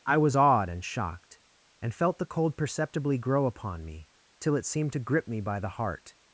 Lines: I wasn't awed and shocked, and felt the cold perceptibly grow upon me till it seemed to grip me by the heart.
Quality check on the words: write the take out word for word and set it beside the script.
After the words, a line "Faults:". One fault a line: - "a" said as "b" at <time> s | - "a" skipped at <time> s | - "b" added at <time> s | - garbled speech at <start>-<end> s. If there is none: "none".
I was awed and shocked, and felt the cold perceptibly grow upon me till it seemed to grip me by the heart.
Faults:
- "wasn't" said as "was" at 0.2 s